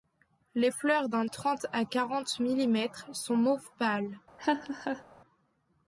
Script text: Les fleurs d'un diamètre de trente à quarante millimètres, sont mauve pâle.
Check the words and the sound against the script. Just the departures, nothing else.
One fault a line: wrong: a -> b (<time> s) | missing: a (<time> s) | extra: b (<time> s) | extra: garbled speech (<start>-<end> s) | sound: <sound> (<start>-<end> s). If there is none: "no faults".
missing: diamètre de (1.2 s)
sound: laugh (4.4-5.0 s)